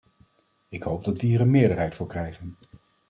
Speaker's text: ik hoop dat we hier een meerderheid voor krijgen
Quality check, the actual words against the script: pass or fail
pass